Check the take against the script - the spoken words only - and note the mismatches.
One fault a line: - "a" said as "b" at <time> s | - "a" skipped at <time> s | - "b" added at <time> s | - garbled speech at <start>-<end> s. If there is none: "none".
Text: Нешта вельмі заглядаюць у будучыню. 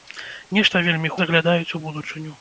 none